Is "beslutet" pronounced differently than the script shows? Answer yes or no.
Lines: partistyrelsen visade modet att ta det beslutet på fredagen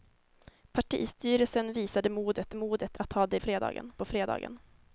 yes